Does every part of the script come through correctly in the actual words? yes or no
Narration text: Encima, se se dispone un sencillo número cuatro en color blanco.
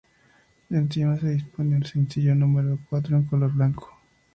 no